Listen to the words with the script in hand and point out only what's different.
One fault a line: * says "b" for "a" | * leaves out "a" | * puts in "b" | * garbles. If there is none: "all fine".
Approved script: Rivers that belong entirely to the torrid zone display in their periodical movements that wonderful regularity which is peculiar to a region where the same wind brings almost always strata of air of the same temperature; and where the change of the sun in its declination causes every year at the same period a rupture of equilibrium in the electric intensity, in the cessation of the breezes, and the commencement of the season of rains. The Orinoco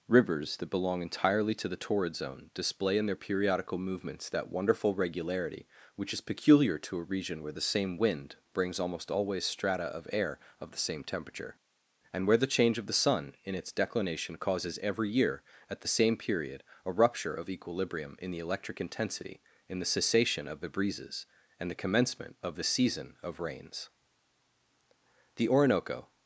all fine